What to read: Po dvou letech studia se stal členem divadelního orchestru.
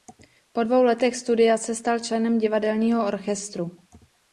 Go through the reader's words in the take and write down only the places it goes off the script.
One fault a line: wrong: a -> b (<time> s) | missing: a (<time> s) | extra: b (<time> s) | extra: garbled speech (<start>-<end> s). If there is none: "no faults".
no faults